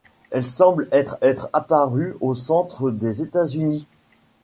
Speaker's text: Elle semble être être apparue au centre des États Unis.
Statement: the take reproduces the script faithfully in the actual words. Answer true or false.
true